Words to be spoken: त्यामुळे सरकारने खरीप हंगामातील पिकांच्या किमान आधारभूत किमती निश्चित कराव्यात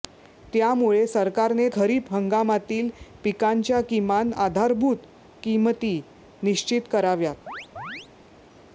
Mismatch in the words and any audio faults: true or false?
true